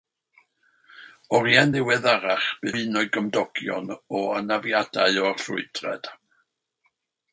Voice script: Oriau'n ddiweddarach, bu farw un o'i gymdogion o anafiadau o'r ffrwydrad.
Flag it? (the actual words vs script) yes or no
yes